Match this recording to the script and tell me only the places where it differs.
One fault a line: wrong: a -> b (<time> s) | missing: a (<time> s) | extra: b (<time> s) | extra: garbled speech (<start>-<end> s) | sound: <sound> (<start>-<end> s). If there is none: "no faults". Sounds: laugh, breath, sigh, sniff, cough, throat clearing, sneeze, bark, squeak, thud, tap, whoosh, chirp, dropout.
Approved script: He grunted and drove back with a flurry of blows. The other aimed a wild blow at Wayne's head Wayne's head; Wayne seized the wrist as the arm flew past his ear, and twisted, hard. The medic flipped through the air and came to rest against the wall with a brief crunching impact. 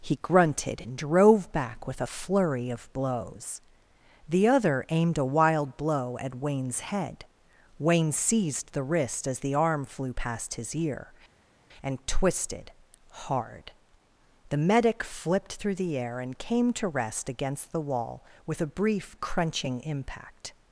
missing: Wayne's head (7.2 s)